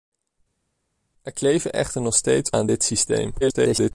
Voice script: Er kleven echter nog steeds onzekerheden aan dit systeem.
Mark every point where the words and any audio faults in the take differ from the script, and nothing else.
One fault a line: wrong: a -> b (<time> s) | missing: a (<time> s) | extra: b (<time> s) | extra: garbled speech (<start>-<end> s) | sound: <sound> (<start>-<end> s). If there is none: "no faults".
missing: onzekerheden (2.5 s)
extra: garbled speech (3.4-3.9 s)